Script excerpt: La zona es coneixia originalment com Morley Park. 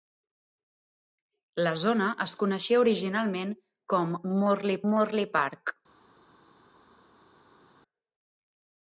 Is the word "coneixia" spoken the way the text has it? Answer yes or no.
yes